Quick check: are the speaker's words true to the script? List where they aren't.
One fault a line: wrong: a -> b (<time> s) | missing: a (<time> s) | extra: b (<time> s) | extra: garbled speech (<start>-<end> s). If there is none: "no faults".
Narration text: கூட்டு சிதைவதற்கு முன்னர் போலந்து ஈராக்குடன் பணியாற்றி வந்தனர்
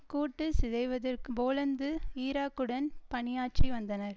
missing: முன்னர் (1.3 s)